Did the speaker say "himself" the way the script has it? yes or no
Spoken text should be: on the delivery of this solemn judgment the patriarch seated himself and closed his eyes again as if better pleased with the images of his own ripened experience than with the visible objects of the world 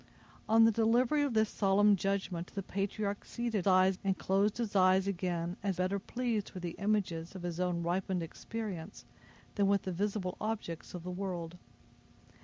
no